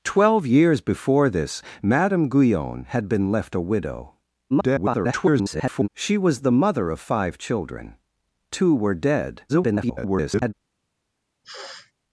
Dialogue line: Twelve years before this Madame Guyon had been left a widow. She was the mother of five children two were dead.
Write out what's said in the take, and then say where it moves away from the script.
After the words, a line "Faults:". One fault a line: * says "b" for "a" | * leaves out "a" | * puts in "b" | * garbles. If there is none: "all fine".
Twelve years before this Madame Guyon had been left a widow. [garbled] She was the mother of five children two were dead. [garbled]
Faults:
* garbles
* garbles